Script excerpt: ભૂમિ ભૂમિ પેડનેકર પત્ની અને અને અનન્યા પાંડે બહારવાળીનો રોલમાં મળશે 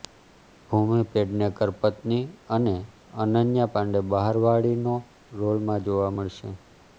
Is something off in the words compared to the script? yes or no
yes